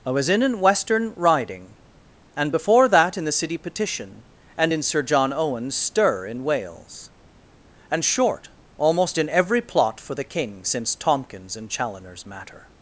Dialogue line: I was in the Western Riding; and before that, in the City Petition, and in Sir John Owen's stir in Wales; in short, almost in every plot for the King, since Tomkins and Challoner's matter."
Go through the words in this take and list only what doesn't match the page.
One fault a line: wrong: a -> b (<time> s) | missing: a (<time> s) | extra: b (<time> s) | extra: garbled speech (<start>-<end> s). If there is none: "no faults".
wrong: the -> an (0.4 s)
wrong: in -> and (7.9 s)